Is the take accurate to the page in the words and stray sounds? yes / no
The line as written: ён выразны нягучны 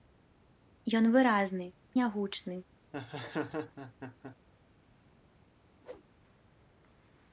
no